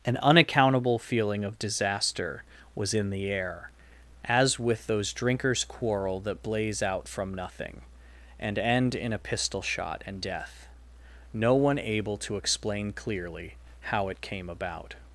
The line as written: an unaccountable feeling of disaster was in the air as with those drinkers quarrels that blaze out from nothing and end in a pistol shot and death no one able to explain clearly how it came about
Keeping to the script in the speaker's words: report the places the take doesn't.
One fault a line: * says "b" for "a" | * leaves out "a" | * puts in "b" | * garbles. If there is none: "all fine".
* says "quarrel" for "quarrels"